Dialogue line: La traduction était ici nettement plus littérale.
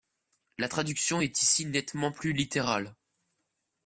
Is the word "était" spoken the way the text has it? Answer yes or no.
no